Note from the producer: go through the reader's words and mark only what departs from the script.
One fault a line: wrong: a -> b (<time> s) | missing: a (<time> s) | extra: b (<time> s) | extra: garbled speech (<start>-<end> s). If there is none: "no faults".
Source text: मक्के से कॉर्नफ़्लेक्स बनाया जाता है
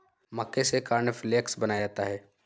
no faults